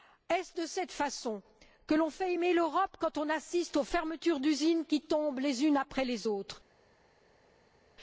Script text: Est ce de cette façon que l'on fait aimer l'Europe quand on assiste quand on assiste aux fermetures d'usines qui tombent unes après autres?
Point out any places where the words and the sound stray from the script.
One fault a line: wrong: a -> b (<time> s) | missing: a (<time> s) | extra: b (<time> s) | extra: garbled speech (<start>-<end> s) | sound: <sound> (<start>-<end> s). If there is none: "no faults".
missing: quand on assiste (3.8 s)
extra: les (5.4 s)
extra: les (6.0 s)